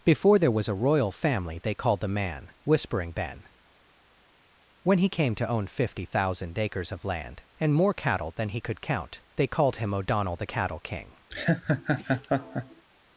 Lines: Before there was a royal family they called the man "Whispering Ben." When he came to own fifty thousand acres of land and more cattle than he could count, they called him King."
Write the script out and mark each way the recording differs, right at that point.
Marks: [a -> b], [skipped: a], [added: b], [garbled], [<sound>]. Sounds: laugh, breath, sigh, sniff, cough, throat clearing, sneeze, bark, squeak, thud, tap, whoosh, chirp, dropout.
Before there was a royal family they called the man "Whispering Ben." When he came to own fifty thousand acres of land and more cattle than he could count, they called him [added: O'Donnell the Cattle] King." [laugh]